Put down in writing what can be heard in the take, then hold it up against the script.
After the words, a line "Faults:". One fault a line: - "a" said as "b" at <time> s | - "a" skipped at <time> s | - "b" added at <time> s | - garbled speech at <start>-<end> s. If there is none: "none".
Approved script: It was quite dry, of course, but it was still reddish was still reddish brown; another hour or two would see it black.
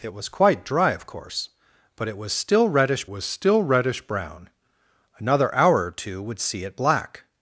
It was quite dry, of course, but it was still reddish was still reddish brown; another hour or two would see it black.
Faults:
none